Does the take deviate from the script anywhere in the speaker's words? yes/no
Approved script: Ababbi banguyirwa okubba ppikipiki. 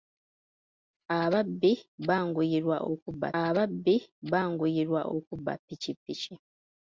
yes